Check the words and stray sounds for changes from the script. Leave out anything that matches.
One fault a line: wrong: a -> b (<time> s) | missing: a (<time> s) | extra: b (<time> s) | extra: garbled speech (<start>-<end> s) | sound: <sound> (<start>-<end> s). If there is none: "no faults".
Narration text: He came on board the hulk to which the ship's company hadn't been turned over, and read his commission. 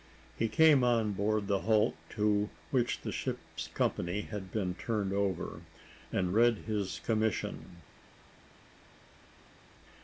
wrong: hadn't -> had (4.2 s)